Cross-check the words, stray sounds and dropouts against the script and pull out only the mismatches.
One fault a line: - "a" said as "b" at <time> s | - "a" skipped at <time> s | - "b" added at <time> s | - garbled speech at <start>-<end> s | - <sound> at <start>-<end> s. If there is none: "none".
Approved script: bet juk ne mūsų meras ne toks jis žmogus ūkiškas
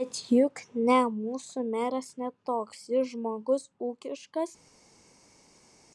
none